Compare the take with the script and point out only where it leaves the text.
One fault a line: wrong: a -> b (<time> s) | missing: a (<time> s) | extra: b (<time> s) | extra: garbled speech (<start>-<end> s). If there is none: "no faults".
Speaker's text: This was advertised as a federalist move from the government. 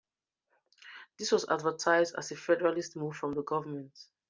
no faults